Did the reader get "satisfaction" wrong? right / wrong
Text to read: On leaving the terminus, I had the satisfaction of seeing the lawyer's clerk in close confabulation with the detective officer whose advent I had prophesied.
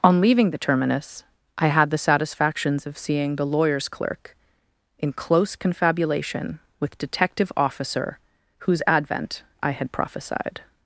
wrong